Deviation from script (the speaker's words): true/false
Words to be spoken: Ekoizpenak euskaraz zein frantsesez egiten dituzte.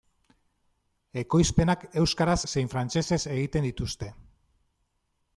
false